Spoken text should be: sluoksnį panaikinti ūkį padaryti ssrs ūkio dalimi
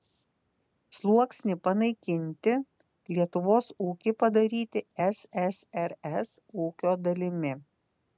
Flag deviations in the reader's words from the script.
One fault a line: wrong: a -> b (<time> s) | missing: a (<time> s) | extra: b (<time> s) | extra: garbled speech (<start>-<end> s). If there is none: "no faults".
extra: lietuvos (3.2 s)